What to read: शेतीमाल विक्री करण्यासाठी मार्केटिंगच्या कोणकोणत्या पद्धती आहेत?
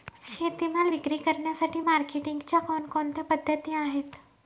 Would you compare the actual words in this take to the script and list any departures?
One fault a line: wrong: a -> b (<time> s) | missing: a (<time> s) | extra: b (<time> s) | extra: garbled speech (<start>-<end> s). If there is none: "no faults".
no faults